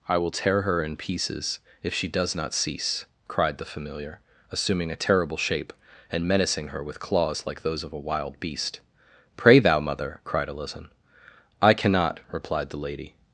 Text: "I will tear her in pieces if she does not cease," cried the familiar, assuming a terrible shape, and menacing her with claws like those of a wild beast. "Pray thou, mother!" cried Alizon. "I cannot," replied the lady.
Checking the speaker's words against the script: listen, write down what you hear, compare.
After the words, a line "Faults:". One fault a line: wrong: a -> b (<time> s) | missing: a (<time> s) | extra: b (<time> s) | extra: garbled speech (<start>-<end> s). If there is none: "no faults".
"I will tear her in pieces if she does not cease," cried the familiar, assuming a terrible shape, and menacing her with claws like those of a wild beast. "Pray thou, mother!" cried Alizon. "I cannot," replied the lady.
Faults:
no faults